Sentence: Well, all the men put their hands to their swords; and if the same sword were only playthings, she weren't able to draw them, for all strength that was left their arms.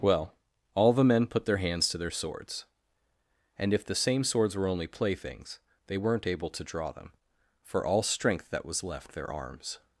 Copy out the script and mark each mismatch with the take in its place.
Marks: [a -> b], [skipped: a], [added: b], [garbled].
Well, all the men put their hands to their swords; and if the same [sword -> swords] were only playthings, [she -> they] weren't able to draw them, for all strength that was left their arms.